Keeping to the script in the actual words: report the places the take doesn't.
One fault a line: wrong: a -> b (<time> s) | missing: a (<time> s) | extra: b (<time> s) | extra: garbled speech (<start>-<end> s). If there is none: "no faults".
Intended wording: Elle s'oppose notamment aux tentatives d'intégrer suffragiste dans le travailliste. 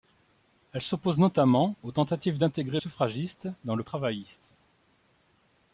no faults